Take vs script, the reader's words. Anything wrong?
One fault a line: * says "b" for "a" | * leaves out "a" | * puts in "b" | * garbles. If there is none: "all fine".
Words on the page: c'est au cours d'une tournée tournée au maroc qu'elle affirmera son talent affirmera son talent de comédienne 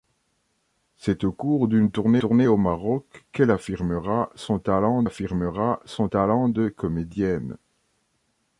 all fine